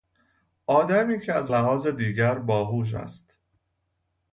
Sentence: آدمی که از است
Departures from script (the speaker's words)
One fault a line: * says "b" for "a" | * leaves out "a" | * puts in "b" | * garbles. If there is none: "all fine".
* puts in "لحاظ دیگر باهوش"